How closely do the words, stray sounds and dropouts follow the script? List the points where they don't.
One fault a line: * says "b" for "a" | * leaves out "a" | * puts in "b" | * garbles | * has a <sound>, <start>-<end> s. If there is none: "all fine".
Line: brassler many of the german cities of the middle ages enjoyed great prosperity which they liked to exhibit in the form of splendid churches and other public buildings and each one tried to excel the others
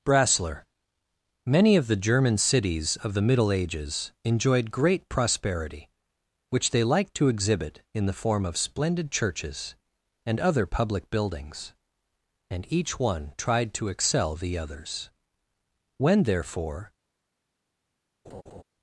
* puts in "when therefore"
* has a laugh, 18.2-18.6 s